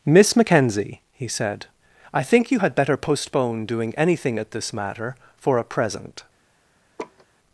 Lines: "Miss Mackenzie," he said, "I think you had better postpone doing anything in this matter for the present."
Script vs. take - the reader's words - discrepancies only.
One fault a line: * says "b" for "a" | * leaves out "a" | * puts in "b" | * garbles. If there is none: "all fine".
* says "at" for "in"
* says "a" for "the"